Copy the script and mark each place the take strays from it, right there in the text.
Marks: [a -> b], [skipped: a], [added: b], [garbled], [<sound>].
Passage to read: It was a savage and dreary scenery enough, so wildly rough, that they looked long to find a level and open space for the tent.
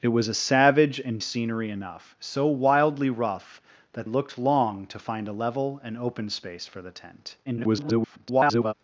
It was a savage and [skipped: dreary] scenery enough, so wildly rough, that [skipped: they] looked long to find a level and open space for the tent. [garbled]